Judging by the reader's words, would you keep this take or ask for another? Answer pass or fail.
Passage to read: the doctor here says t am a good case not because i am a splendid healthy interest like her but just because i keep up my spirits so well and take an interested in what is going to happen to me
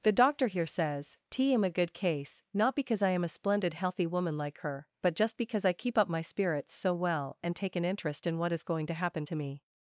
fail